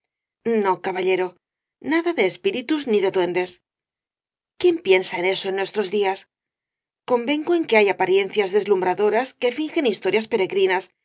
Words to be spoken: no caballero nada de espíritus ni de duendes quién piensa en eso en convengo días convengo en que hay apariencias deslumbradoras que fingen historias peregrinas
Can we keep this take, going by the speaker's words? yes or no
no